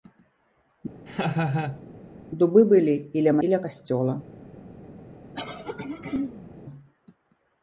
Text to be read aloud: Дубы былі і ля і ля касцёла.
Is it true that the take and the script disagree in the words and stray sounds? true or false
true